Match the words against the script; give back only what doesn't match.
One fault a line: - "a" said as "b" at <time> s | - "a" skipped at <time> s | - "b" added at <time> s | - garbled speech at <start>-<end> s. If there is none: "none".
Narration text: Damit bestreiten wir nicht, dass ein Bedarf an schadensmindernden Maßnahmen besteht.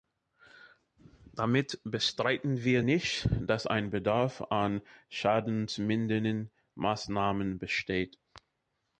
none